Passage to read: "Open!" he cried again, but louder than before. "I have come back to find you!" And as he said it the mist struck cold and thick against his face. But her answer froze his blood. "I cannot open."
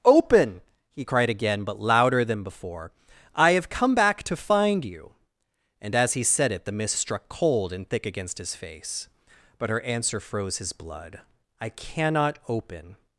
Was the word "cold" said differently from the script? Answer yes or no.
no